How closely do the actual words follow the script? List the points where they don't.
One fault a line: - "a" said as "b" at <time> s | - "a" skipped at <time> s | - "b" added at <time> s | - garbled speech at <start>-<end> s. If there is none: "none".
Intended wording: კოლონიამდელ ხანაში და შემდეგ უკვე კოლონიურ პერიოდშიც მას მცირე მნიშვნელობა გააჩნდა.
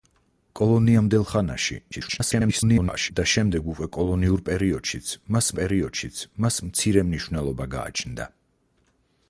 - garbled speech at 1.9-3.1 s
- "პერიოდშიც მას" added at 5.6 s